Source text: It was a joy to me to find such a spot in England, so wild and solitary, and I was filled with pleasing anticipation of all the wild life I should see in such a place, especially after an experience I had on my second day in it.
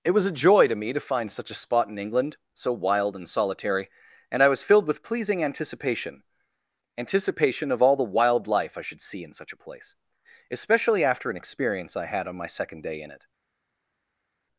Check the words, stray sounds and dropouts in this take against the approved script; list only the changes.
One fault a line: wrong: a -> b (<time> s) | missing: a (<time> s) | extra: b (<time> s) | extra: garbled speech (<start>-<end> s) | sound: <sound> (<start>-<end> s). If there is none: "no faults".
extra: anticipation (7.0 s)